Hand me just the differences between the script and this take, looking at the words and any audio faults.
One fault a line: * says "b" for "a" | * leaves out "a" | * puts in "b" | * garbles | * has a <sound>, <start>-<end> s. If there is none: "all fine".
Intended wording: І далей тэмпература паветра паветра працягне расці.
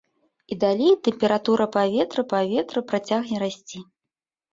all fine